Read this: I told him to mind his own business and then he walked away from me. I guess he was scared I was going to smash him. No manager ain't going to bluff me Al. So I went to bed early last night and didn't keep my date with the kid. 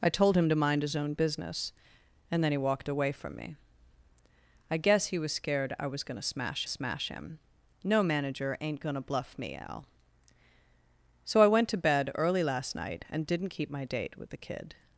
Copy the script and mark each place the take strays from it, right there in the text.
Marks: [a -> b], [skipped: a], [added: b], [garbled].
I told him to mind his own business and then he walked away from me. I guess he was scared I was going to smash [added: smash] him. No manager ain't going to bluff me Al. So I went to bed early last night and didn't keep my date with the kid.